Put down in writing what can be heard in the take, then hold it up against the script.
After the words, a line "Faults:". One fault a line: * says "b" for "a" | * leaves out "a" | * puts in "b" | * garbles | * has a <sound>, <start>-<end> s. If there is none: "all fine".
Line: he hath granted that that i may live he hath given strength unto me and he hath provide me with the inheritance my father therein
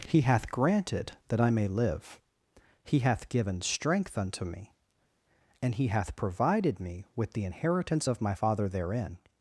he hath granted that i may live he hath given strength unto me and he hath provided me with the inheritance of my father therein
Faults:
* leaves out "that"
* says "provided" for "provide"
* puts in "of"